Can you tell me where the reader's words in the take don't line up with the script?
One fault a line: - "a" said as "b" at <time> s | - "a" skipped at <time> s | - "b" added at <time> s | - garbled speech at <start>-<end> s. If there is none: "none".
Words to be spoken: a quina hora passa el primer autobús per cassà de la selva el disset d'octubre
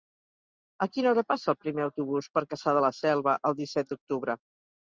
none